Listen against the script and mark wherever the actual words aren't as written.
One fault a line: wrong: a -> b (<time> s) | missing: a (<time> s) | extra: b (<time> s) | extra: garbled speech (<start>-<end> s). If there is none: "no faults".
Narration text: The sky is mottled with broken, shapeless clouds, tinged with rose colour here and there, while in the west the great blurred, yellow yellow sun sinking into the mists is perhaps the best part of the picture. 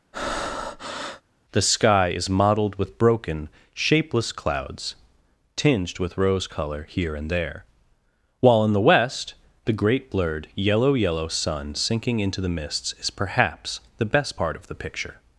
no faults